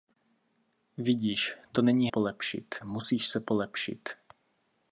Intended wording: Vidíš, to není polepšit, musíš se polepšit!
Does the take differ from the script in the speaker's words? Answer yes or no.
no